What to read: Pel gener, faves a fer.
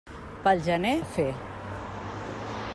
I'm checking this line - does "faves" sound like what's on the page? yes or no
no